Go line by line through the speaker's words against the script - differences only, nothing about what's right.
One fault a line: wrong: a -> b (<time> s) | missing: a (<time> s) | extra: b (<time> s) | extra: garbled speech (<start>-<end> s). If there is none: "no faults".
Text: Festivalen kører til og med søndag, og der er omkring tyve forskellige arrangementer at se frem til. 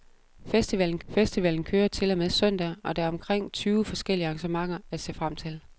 extra: festivalen (1.1 s)